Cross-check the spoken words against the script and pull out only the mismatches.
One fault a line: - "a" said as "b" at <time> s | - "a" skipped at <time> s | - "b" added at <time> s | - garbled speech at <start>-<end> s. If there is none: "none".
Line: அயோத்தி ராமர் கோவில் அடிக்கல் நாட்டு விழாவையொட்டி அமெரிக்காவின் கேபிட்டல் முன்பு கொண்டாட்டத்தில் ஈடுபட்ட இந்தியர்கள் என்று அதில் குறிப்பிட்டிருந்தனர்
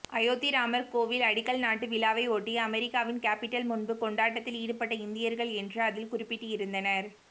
none